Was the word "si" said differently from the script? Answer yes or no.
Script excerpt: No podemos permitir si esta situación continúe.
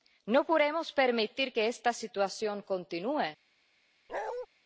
yes